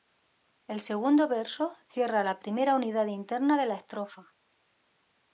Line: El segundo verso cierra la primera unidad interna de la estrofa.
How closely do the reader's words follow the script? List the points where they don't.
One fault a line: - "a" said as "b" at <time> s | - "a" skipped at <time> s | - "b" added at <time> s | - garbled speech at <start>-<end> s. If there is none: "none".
none